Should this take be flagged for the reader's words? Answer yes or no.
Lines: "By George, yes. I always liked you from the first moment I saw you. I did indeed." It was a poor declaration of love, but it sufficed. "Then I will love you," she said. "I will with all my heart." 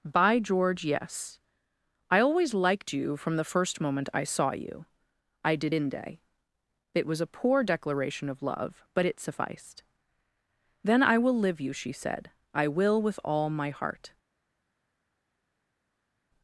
yes